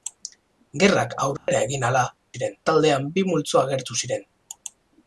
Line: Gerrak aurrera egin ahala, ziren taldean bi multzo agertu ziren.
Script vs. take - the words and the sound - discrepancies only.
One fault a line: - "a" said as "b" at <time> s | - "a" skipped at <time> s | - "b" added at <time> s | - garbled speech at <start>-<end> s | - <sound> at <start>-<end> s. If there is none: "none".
- dropout at 1.4-1.5 s